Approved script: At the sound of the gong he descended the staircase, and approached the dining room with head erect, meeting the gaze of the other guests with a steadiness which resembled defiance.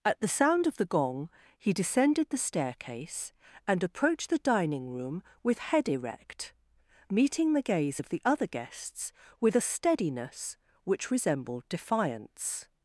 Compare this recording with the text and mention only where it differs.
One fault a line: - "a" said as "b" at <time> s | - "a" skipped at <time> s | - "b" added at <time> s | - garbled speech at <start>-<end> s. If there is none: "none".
none